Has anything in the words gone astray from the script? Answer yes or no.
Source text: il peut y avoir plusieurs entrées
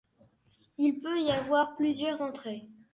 no